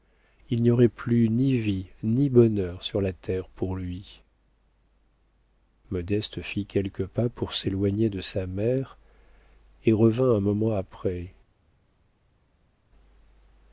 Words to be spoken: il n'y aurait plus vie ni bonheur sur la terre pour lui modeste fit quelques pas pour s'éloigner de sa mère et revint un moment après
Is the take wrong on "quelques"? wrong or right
right